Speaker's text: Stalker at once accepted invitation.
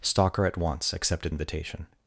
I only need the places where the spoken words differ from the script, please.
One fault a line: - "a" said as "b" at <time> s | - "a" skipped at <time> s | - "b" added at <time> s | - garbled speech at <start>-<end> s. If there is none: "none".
none